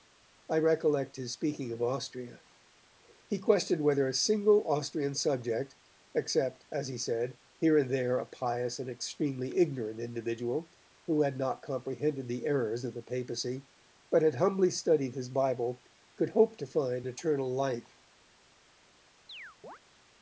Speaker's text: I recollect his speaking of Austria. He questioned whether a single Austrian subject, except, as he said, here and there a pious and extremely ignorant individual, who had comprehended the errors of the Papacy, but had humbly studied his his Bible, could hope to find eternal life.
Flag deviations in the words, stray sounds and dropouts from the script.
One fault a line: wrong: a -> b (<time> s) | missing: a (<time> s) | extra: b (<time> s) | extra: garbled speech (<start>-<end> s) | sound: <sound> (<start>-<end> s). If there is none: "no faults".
extra: not (11.4 s)
missing: his (15.3 s)
sound: chirp (19.3-19.8 s)